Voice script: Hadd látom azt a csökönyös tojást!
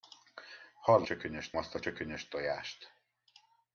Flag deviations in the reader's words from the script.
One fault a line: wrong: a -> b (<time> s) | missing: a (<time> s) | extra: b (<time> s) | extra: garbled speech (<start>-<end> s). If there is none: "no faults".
wrong: látom -> csökönyös (1.0 s)